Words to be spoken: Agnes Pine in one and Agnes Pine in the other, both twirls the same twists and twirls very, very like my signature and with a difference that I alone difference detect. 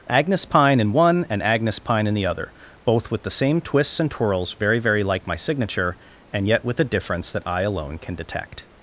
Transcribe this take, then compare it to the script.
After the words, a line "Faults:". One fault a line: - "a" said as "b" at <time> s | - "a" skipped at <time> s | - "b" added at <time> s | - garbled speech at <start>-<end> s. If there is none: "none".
Agnes Pine in one and Agnes Pine in the other, both with the same twists and twirls very, very like my signature and yet with a difference that I alone can detect.
Faults:
- "twirls" said as "with" at 3.1 s
- "yet" added at 6.4 s
- "difference" said as "can" at 8.0 s